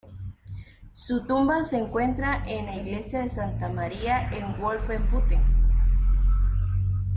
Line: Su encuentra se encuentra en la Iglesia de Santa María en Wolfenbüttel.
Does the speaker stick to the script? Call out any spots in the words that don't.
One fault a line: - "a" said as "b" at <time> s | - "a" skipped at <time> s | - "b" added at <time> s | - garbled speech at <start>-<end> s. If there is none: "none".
- "encuentra" said as "tumba" at 1.2 s